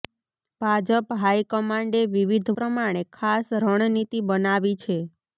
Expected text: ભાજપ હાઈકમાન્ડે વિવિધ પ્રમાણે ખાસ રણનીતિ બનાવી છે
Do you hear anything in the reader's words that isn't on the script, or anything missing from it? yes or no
no